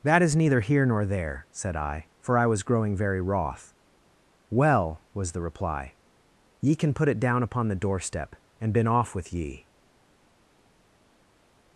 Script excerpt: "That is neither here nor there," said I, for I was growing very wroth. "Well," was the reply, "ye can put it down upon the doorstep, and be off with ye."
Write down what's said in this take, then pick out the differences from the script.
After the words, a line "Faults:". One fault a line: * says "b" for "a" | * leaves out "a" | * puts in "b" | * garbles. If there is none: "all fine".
"That is neither here nor there," said I, for I was growing very wroth. "Well," was the reply, "ye can put it down upon the doorstep, and been off with ye."
Faults:
* says "been" for "be"